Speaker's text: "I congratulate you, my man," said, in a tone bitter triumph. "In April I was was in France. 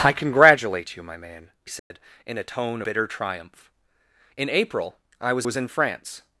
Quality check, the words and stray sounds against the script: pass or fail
fail